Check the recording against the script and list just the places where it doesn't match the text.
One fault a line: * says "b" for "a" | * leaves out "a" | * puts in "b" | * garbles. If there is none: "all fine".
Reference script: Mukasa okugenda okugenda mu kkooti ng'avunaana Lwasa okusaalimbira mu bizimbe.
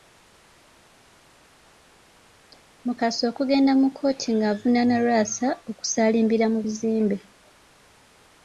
* leaves out "okugenda"